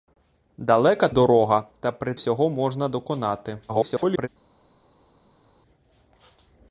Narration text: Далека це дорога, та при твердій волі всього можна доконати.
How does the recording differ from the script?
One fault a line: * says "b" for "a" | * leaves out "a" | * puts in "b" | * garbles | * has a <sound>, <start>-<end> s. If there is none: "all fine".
* leaves out "це"
* leaves out "твердій волі"
* garbles